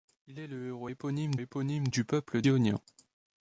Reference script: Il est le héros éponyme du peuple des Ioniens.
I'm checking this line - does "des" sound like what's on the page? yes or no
no